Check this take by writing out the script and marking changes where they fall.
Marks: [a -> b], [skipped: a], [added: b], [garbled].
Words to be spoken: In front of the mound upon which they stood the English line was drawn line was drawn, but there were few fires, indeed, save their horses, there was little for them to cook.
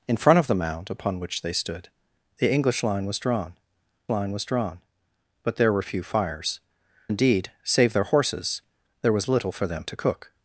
In front of the mound upon which they stood the English line was drawn line was drawn, but there were few fires, indeed, save their horses, there was little for them to cook.